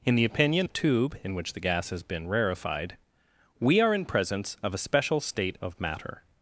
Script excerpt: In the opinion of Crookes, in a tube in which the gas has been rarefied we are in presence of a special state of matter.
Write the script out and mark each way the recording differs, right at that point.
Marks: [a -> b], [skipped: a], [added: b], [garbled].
In the opinion [skipped: of Crookes, in] a tube in which the gas has been rarefied we are in presence of a special state of matter.